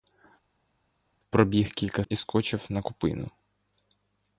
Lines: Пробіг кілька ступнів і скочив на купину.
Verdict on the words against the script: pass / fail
fail